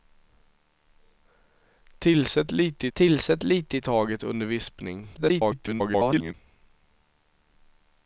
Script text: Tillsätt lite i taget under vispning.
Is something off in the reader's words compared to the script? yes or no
yes